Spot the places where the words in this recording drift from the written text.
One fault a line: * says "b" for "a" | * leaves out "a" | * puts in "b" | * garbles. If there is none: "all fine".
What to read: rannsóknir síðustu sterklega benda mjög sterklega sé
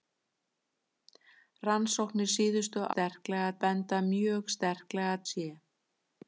all fine